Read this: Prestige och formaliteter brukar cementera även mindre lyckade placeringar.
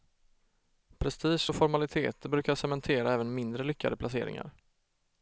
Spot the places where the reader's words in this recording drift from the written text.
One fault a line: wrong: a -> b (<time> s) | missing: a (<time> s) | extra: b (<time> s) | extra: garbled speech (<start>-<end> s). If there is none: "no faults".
no faults